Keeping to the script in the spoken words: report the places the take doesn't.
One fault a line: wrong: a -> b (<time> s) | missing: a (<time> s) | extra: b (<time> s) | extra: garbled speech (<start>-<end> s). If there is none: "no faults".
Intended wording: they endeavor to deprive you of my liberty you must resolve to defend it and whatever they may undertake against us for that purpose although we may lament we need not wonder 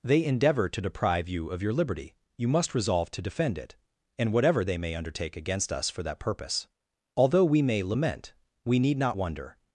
wrong: my -> your (1.6 s)